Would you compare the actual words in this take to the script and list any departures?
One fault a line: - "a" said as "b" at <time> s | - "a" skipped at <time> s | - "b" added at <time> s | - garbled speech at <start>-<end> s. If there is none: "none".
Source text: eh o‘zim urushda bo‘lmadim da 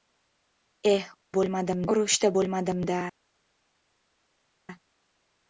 - "o‘zim" said as "bo‘lmadim" at 1.4 s